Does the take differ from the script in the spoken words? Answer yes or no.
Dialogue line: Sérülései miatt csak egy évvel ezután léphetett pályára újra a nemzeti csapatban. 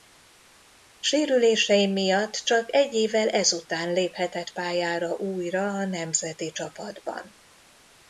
no